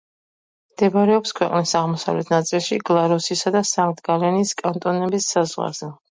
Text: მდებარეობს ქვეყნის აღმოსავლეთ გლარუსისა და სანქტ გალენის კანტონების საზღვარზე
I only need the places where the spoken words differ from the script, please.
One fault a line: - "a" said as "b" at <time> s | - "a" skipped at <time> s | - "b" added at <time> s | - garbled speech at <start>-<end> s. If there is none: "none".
- "ნაწილში" added at 2.3 s